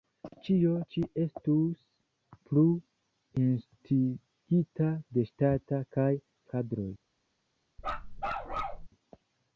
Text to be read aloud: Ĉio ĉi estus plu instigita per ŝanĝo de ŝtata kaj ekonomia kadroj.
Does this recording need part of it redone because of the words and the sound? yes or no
yes